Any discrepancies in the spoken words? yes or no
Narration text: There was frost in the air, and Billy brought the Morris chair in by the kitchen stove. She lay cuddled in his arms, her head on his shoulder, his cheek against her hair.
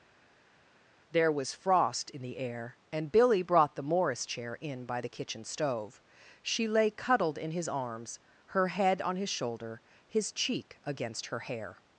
no